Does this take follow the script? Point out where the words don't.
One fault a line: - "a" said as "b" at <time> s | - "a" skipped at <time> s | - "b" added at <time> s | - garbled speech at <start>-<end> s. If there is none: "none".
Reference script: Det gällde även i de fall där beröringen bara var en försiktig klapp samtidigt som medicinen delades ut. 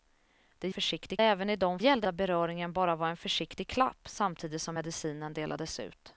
- "gällde" said as "försiktig" at 0.7 s
- "fall" said as "gällde" at 1.8 s